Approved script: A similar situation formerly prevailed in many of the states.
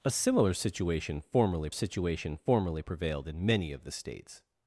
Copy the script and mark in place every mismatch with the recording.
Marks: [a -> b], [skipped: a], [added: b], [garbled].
A similar situation formerly [added: situation formerly] prevailed in many of the states.